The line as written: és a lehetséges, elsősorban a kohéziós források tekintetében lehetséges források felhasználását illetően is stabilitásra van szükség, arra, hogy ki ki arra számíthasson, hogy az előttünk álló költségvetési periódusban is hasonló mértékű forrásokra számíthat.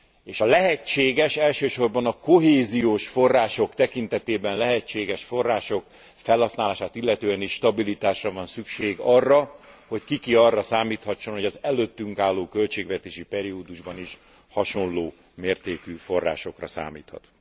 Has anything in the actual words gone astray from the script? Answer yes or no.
no